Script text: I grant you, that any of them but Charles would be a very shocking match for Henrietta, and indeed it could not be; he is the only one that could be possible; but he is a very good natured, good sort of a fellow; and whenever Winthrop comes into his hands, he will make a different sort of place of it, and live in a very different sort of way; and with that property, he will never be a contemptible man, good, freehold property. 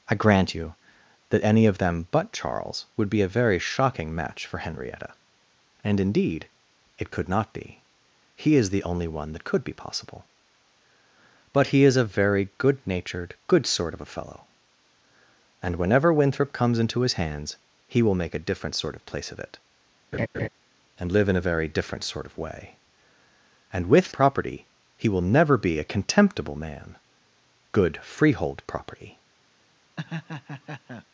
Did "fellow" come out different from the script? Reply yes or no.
no